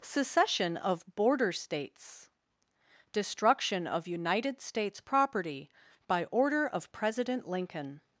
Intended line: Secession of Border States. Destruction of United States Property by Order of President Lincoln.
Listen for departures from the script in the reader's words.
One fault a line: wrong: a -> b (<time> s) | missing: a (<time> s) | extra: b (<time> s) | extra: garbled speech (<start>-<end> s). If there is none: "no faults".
no faults